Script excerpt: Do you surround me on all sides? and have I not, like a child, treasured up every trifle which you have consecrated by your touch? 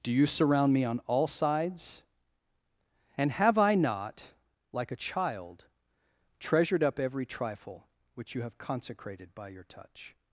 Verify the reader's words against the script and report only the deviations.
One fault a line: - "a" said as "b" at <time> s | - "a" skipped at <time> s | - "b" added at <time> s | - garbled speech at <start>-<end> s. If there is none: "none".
none